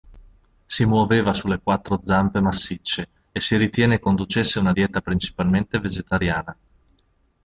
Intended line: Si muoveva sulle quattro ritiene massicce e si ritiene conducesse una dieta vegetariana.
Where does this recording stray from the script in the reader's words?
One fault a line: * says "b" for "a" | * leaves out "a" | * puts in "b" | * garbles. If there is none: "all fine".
* says "zampe" for "ritiene"
* puts in "principalmente"